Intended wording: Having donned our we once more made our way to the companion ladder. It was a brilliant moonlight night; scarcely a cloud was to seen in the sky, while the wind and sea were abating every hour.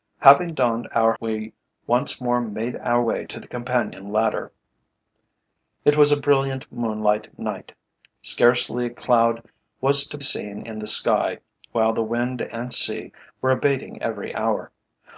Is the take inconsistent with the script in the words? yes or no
no